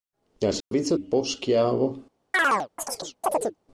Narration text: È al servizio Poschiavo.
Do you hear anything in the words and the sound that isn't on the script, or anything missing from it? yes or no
yes